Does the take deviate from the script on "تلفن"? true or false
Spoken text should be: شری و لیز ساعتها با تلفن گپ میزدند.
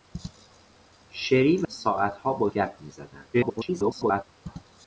true